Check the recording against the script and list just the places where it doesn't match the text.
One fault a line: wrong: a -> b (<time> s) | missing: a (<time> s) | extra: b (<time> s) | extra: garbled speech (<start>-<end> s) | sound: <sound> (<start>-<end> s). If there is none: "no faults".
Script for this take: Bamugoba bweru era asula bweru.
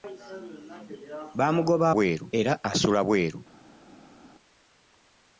no faults